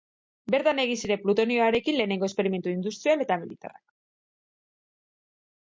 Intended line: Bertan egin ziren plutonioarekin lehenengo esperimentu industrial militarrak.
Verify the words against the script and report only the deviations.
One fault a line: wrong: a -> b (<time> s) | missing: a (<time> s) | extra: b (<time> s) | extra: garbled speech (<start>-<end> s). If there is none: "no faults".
extra: eta (3.3 s)